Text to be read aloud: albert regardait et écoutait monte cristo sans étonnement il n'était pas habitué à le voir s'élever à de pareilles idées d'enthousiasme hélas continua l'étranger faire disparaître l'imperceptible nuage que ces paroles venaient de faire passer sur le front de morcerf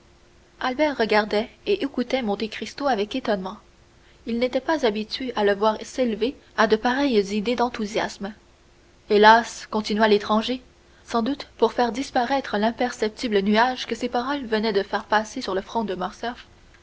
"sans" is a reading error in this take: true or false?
true